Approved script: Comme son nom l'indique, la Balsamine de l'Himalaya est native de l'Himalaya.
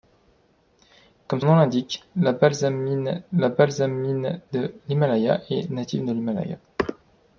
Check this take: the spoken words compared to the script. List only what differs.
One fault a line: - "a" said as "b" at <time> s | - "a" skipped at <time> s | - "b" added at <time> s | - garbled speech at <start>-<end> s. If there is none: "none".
- "son" skipped at 1.4 s
- "la Balsamine" added at 3.3 s